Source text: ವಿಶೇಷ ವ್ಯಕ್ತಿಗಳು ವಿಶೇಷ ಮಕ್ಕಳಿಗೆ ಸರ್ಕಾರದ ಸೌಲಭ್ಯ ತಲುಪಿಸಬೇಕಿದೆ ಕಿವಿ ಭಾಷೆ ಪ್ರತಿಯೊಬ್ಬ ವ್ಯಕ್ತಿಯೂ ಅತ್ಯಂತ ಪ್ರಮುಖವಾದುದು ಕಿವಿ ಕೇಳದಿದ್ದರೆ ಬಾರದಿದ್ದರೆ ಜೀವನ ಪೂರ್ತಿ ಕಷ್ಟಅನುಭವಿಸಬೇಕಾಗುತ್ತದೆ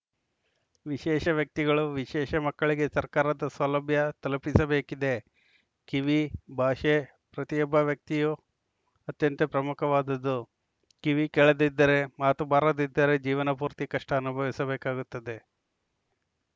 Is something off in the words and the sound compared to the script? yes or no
yes